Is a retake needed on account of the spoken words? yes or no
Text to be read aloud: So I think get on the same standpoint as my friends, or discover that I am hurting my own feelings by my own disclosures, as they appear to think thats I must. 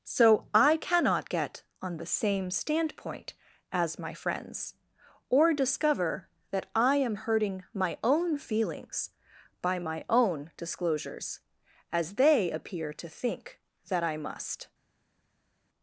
yes